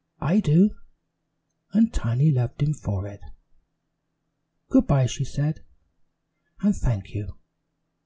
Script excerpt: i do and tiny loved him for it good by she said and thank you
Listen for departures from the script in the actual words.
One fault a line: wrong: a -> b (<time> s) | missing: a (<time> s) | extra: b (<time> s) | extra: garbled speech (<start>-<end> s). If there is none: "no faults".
no faults